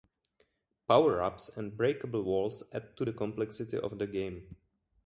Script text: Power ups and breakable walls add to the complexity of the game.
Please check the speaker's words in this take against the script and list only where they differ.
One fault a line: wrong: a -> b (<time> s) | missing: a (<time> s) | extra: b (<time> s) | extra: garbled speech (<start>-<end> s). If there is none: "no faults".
no faults